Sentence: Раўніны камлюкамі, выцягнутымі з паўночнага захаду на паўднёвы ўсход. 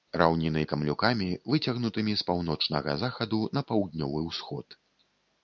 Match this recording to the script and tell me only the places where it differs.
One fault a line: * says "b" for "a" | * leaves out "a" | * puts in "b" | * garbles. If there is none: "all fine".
all fine